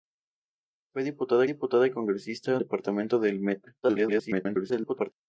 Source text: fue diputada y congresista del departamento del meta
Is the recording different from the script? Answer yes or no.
yes